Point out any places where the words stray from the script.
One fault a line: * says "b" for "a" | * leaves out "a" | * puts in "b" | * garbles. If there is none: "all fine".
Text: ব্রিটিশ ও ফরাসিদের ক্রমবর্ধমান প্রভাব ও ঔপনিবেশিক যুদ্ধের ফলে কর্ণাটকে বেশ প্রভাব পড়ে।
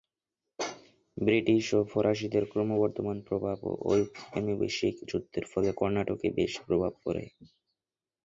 all fine